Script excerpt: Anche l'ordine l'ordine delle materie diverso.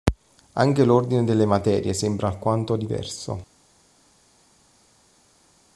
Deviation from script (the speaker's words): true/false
true